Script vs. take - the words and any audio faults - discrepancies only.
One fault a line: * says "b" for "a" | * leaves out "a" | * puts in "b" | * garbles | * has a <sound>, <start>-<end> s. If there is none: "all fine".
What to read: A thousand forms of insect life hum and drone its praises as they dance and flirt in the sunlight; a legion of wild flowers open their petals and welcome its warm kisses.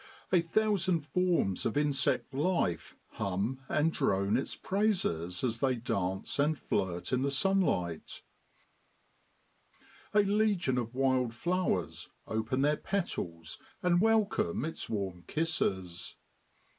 all fine